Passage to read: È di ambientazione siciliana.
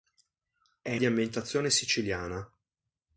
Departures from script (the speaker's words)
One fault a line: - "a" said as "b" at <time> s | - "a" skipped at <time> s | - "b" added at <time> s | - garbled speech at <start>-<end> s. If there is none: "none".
none